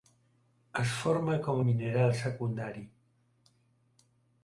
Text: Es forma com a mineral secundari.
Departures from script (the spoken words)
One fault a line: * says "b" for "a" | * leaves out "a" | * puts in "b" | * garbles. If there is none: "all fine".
all fine